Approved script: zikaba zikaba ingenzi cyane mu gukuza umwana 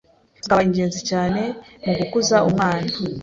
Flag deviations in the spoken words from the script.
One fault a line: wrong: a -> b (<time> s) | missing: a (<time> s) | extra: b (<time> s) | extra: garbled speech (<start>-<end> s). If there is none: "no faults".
missing: zikaba (0.6 s)